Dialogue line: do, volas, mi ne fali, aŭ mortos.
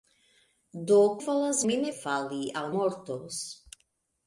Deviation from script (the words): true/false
false